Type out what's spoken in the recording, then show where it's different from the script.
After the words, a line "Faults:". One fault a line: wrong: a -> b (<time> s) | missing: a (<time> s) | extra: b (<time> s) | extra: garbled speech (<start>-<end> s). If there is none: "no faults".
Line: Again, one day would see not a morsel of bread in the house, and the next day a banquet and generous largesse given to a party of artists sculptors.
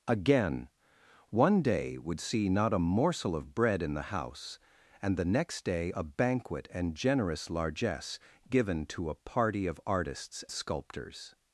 Again, one day would see not a morsel of bread in the house, and the next day a banquet and generous largesse given to a party of artists sculptors.
Faults:
no faults